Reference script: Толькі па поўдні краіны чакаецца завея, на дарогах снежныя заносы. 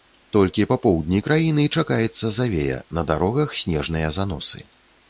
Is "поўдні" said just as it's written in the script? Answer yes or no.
yes